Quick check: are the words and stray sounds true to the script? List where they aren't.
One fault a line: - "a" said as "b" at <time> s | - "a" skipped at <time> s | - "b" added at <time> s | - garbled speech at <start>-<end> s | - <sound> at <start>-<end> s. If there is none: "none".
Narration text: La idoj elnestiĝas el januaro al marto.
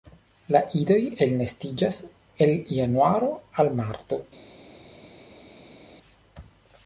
none